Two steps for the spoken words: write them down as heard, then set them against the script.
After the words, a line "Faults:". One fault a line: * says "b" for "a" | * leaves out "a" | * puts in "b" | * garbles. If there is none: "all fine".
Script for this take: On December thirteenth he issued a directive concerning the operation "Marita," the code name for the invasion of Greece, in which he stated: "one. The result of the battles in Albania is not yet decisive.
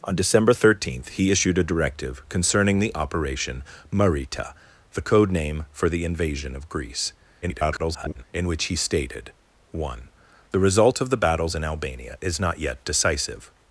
On December thirteenth he issued a directive concerning the operation "Marita," the code name for the invasion of Greece, [garbled] in which he stated: "one. The result of the battles in Albania is not yet decisive.
Faults:
* garbles